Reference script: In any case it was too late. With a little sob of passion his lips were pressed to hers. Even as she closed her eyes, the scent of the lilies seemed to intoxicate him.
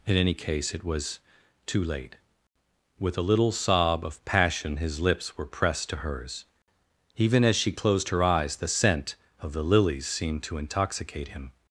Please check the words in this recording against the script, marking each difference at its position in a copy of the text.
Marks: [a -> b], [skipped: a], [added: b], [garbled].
In any case it was too late. With a little sob of passion his lips were pressed to hers. Even as she closed her eyes, the scent of the lilies seemed to intoxicate him.